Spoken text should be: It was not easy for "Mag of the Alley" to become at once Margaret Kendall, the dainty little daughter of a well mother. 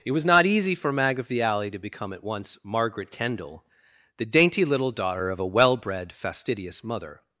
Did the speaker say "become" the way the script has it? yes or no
yes